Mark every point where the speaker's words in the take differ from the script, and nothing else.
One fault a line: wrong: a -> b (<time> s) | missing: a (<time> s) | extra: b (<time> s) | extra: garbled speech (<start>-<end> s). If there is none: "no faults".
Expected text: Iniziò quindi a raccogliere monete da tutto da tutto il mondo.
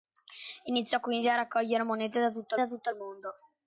no faults